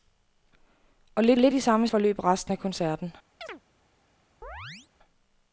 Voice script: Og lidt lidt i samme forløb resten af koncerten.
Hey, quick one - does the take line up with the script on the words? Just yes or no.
yes